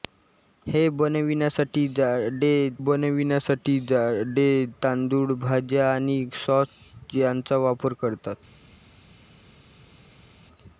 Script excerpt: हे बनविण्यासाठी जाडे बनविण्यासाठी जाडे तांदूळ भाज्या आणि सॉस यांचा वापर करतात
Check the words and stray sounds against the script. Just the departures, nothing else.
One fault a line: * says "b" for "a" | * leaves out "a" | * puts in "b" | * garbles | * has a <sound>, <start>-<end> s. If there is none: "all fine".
all fine